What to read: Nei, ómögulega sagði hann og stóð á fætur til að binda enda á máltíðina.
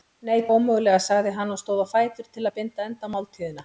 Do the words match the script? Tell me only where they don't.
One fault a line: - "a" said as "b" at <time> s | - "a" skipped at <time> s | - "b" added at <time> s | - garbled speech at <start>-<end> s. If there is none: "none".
none